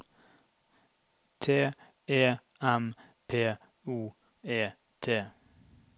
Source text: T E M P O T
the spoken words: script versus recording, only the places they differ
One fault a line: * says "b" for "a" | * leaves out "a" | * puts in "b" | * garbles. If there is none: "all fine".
* puts in "E"